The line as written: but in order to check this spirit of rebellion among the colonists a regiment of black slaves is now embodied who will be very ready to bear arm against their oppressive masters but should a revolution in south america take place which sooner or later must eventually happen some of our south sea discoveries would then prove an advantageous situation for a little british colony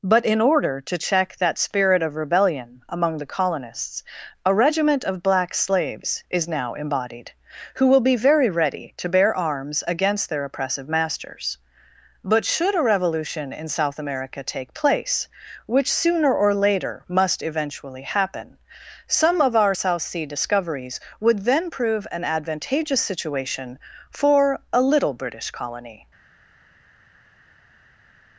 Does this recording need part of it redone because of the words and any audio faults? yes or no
yes